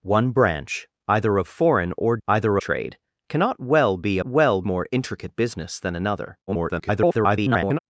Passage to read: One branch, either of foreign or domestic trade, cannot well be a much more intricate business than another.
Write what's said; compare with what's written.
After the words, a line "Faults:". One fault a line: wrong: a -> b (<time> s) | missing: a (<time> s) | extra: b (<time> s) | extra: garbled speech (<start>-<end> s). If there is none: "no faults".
One branch, either of foreign or either trade, cannot well be a well more intricate business than another. [garbled]
Faults:
wrong: domestic -> either (2.3 s)
wrong: much -> well (4.2 s)
extra: garbled speech (6.5-7.8 s)